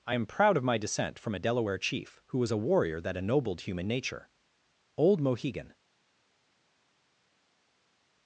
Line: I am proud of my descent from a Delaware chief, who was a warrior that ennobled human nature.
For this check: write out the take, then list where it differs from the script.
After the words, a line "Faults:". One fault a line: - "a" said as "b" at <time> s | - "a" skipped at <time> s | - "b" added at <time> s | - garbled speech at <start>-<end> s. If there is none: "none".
I am proud of my descent from a Delaware chief, who was a warrior that ennobled human nature. Old Mohegan
Faults:
- "Old Mohegan" added at 5.0 s